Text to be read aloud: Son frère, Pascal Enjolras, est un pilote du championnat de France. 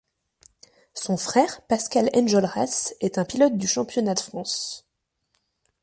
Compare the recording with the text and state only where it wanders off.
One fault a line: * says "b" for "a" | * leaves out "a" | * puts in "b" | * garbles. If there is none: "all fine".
all fine